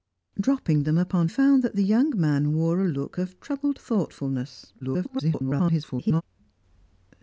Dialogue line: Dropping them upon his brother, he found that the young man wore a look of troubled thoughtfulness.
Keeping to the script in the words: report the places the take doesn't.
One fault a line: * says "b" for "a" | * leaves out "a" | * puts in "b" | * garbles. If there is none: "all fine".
* leaves out "his brother he"
* garbles